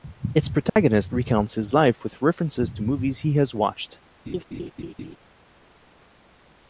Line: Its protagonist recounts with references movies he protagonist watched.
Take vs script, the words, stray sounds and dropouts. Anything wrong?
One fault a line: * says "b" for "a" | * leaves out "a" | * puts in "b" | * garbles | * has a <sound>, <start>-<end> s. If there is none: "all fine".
* has a dropout, 0.7-0.8 s
* puts in "his life"
* puts in "to"
* says "has" for "protagonist"
* has a laugh, 4.3-5.2 s